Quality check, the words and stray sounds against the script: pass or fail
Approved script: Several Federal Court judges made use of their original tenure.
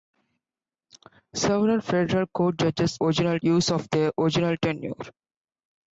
fail